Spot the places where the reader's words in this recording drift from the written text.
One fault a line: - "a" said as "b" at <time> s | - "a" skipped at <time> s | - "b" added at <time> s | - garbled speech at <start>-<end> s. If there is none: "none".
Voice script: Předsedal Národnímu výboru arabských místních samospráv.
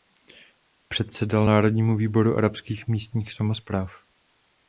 none